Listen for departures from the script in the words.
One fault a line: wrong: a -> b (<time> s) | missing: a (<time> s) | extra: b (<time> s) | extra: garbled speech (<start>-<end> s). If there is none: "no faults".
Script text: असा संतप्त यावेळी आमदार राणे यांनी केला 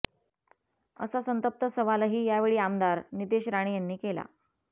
extra: सवालही (1.7 s)
extra: नितेश (3.1 s)